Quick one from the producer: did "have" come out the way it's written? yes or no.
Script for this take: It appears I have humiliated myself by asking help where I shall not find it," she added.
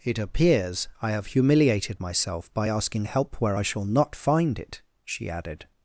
yes